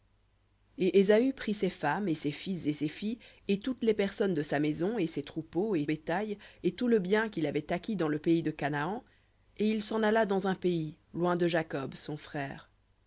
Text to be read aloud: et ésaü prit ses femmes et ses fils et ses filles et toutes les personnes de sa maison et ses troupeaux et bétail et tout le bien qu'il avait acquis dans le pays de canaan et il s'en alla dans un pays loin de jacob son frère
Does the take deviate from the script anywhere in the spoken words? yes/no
no